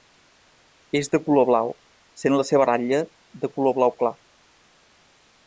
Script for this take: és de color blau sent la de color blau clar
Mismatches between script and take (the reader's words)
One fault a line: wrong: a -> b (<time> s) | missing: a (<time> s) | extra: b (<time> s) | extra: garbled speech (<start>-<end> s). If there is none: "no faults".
extra: seva ratlla (2.5 s)